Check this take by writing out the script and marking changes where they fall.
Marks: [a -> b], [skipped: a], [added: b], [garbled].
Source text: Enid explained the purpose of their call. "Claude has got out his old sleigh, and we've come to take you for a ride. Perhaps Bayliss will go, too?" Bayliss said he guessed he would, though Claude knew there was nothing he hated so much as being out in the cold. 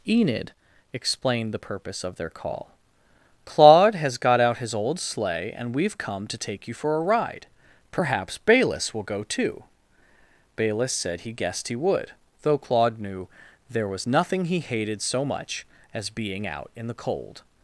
Enid explained the purpose of their call. "Claude has got out his old sleigh, and we've come to take you for a ride. Perhaps Bayliss will go, too?" Bayliss said he guessed he would, though Claude knew there was nothing he hated so much as being out in the cold.